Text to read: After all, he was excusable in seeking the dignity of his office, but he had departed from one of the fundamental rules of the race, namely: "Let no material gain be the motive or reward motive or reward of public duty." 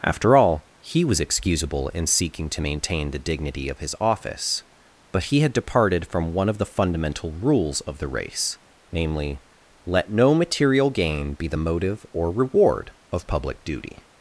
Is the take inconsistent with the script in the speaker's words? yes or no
yes